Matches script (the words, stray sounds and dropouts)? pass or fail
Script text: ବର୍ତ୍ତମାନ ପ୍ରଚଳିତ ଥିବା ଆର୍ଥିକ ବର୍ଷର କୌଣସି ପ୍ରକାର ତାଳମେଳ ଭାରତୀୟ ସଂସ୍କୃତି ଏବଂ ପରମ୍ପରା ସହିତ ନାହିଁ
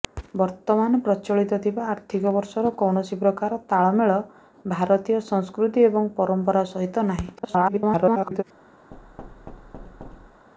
fail